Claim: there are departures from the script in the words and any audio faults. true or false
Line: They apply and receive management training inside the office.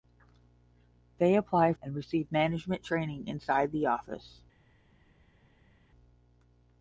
false